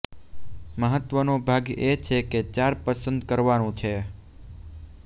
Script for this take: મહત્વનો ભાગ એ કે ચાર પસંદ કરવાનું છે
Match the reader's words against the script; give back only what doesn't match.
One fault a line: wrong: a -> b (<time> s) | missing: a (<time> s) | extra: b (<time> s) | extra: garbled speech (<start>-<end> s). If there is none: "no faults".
extra: છે (2.0 s)